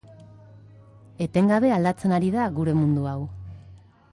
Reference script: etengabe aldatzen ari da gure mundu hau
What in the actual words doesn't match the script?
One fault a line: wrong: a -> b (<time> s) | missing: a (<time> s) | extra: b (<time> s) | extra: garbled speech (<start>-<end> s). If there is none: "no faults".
no faults